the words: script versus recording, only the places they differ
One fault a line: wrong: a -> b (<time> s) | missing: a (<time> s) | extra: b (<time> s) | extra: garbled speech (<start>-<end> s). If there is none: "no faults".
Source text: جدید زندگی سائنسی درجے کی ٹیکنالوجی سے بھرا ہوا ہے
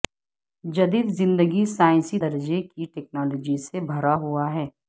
no faults